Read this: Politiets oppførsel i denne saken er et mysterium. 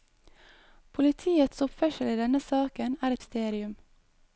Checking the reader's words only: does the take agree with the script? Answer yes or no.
no